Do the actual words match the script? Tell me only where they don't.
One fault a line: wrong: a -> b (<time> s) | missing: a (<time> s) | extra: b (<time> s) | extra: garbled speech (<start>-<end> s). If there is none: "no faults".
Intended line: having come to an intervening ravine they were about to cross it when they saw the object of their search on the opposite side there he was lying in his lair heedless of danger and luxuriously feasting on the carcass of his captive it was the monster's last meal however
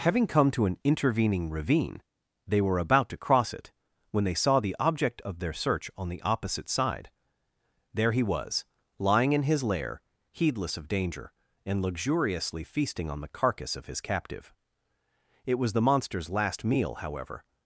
no faults